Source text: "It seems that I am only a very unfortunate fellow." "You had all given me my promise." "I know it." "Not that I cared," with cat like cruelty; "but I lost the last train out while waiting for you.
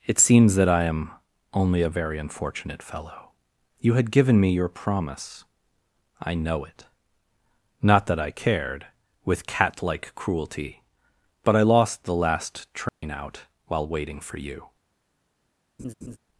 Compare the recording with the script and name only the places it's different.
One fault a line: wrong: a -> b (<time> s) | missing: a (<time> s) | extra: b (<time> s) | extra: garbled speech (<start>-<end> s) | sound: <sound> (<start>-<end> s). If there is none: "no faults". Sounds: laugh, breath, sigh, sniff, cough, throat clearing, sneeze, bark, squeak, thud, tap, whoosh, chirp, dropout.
missing: all (4.1 s)
wrong: my -> your (4.5 s)
sound: dropout (12.9-13.0 s)
sound: laugh (15.8-16.2 s)